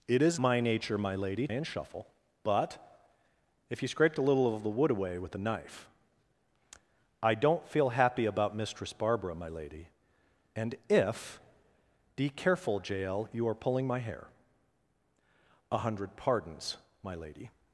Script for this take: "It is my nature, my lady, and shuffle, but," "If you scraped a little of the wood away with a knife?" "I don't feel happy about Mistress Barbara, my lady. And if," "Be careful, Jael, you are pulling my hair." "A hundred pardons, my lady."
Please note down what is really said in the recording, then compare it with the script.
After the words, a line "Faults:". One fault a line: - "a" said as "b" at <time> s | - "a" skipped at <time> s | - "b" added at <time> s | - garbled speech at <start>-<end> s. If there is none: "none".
"It is my nature, my lady, and shuffle, but," "If you scraped a little of the wood away with a knife?" "I don't feel happy about Mistress Barbara, my lady. And if," "Be careful, Jael, you are pulling my hair." "A hundred pardons, my lady."
Faults:
none